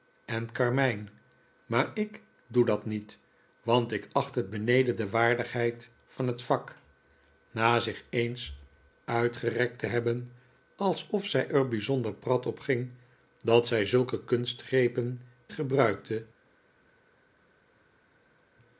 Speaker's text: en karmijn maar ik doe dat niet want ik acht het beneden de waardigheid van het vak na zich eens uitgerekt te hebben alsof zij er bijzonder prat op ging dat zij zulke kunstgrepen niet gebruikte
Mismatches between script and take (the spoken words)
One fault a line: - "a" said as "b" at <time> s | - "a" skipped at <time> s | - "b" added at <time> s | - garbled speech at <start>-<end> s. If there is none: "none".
- "niet" skipped at 15.2 s